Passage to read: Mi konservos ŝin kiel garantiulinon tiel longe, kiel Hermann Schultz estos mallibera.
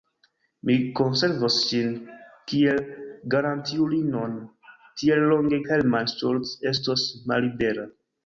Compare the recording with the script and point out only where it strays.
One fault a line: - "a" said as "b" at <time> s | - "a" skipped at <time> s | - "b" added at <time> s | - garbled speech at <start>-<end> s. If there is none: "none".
- "kiel" skipped at 5.6 s